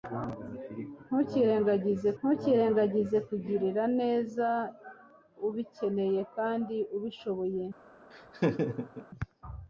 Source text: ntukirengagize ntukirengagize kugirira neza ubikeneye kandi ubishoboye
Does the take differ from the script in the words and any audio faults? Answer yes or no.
yes